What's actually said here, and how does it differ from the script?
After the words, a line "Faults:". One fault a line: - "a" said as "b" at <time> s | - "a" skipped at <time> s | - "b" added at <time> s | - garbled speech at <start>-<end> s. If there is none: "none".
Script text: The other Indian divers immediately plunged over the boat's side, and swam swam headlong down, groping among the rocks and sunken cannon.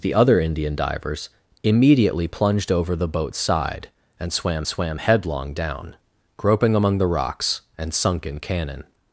The other Indian divers immediately plunged over the boat's side, and swam swam headlong down, groping among the rocks and sunken cannon.
Faults:
none